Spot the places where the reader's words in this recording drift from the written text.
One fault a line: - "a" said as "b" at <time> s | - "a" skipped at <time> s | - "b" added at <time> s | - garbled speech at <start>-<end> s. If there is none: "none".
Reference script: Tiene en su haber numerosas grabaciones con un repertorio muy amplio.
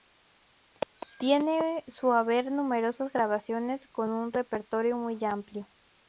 none